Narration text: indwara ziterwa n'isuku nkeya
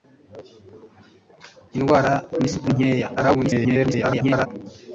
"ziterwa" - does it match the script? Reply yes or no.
no